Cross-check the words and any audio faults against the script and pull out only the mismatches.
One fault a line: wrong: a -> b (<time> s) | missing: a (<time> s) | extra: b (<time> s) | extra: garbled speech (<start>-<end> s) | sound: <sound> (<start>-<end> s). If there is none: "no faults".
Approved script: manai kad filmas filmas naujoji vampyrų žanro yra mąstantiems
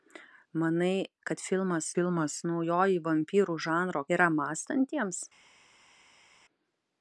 no faults